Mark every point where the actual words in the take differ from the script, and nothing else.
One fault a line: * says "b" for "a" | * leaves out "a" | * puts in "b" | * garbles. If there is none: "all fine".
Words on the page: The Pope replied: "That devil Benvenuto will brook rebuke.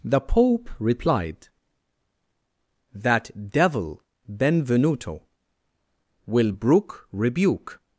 all fine